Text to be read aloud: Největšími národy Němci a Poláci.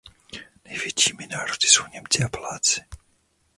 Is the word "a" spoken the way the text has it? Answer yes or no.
yes